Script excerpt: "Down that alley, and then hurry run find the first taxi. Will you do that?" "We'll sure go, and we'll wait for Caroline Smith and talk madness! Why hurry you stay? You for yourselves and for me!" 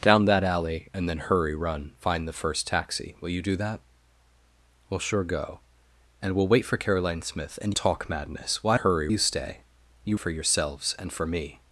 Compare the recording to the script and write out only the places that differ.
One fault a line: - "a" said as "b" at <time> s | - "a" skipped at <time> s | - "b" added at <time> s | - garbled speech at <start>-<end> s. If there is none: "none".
none